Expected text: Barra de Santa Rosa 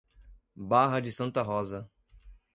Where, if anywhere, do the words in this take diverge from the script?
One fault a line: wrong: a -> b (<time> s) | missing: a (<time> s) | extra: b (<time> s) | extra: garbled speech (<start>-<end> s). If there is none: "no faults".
no faults